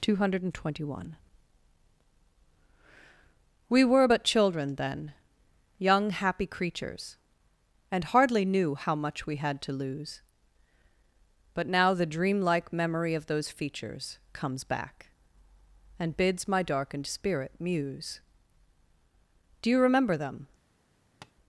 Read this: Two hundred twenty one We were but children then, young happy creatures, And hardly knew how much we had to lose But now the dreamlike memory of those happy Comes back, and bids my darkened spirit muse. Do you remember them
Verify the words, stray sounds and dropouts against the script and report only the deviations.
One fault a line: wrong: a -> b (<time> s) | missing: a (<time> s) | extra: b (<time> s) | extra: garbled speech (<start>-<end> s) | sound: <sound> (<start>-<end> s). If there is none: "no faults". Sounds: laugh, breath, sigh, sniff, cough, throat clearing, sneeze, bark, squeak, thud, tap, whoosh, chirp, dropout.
wrong: happy -> features (13.5 s)
sound: tap (21.2-21.3 s)